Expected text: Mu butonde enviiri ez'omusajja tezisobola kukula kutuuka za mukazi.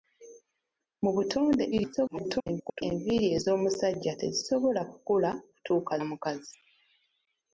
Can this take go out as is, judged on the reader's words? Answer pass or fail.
fail